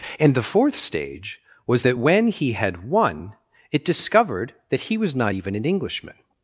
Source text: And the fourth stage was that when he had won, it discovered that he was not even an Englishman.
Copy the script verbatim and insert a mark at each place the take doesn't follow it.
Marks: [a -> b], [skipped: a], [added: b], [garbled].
And the fourth stage was that when he had won, it discovered that he was not even an Englishman.